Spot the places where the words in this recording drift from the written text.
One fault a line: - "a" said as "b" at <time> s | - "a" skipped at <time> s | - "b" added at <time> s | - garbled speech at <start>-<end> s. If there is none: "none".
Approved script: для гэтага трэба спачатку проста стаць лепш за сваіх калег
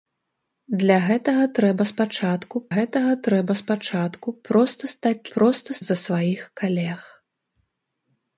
- "гэтага трэба спачатку" added at 2.7 s
- "лепш" said as "проста" at 5.4 s